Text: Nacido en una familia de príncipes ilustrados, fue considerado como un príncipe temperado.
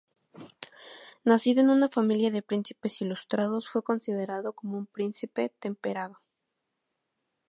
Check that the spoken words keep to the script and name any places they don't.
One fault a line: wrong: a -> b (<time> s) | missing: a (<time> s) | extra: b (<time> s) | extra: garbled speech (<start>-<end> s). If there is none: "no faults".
no faults